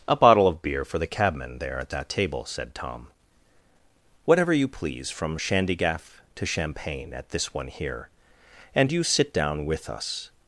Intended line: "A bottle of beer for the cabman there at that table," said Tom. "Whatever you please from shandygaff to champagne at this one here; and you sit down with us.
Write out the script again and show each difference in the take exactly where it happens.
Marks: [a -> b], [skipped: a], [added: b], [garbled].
"A bottle of beer for the cabman there at that table," said Tom. "Whatever you please from shandygaff to champagne at this one here; and you sit down with us.